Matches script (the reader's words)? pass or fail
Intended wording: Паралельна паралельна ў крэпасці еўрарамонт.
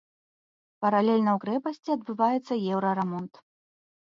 fail